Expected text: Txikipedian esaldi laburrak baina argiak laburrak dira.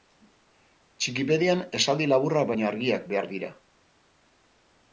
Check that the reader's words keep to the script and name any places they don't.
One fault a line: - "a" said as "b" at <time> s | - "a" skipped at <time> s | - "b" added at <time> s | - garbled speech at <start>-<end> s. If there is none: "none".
- "laburrak" said as "behar" at 3.1 s